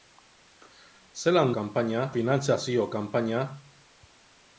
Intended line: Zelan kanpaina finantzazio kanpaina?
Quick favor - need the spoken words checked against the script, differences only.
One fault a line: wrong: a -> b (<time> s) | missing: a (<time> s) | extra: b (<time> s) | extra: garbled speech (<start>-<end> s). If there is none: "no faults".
no faults